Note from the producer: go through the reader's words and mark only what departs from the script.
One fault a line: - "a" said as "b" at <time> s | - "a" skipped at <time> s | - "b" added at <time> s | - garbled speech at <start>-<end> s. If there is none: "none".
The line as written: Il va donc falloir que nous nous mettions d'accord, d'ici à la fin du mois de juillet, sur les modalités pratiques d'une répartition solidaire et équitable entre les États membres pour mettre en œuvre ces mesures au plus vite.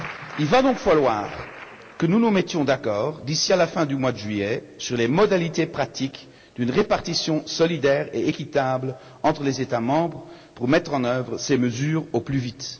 none